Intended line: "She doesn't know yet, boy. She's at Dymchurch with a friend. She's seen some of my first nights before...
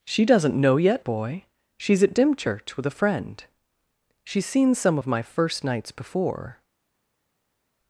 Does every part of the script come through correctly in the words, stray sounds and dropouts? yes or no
yes